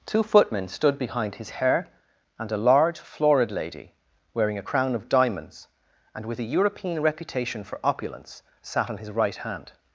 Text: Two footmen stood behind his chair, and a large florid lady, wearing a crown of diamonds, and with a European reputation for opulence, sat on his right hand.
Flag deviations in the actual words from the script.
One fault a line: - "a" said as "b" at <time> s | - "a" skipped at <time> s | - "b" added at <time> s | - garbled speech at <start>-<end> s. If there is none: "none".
- "chair" said as "hair" at 1.5 s